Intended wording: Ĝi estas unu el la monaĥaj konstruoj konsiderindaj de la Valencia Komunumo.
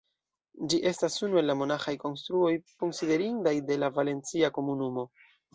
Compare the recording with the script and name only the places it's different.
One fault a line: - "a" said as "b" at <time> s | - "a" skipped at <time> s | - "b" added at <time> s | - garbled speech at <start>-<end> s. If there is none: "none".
none